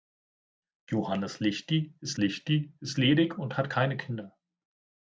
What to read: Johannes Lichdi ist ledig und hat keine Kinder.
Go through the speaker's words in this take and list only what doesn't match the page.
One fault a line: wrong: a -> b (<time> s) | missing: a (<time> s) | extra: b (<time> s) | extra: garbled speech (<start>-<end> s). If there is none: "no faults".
extra: Lichdi ist (2.2 s)